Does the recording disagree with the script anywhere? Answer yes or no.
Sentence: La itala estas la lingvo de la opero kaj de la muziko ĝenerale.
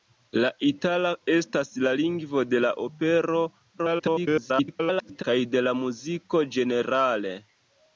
yes